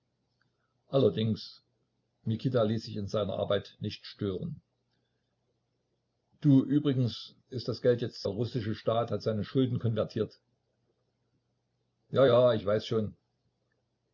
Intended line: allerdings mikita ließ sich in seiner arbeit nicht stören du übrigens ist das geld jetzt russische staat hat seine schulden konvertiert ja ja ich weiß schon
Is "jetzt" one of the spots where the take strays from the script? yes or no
no